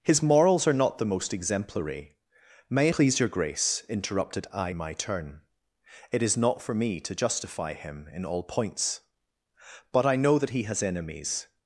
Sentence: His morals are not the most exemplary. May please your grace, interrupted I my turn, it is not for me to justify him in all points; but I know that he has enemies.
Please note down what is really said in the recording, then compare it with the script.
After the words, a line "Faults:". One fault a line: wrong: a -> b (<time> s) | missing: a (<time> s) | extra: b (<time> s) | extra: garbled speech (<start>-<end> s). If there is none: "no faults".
His morals are not the most exemplary. May please your grace, interrupted I my turn, it is not for me to justify him in all points; but I know that he has enemies.
Faults:
no faults